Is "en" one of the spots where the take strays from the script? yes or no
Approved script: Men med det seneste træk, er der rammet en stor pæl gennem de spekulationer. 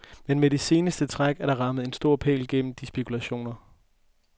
no